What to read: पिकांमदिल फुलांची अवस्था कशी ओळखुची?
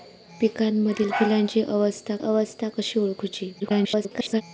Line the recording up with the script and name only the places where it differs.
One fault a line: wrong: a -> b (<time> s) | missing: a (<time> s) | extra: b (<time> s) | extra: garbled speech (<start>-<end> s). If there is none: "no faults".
extra: अवस्था (2.2 s)
extra: garbled speech (3.6-4.4 s)